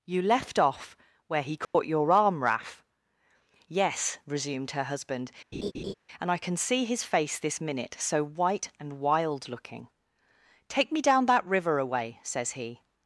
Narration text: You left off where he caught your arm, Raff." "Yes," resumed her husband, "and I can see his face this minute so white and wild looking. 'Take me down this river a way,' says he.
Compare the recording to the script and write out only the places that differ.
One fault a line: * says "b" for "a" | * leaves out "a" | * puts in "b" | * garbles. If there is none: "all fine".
* says "that" for "this"